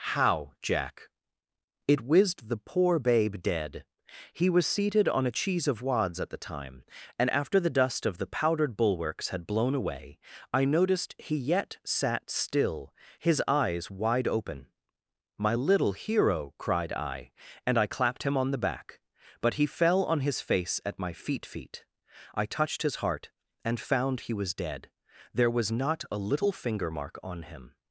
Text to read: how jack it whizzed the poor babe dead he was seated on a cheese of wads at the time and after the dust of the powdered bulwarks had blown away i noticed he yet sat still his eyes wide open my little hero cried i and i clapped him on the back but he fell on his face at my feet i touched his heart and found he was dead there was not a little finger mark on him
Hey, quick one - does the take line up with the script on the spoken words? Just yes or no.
no